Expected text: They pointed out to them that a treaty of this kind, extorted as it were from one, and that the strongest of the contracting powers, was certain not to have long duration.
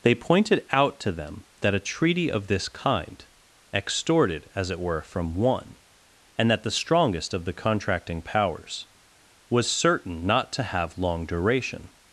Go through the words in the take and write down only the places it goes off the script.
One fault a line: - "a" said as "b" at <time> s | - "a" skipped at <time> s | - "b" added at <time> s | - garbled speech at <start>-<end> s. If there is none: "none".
none